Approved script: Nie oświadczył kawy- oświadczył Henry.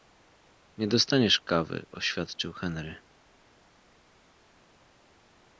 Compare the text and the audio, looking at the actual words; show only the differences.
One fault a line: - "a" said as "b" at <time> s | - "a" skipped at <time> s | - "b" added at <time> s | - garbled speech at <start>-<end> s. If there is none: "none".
- "oświadczył" said as "dostaniesz" at 0.9 s